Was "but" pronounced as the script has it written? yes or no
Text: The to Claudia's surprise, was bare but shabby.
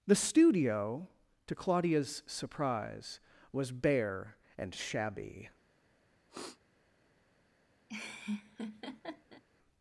no